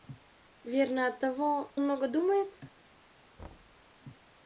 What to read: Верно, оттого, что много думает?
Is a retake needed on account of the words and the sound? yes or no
yes